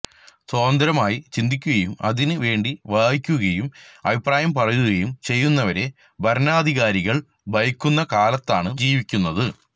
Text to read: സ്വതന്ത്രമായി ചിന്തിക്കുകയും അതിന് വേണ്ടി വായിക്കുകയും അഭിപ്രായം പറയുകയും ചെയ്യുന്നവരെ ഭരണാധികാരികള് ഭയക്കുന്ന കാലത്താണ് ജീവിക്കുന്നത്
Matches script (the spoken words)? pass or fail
pass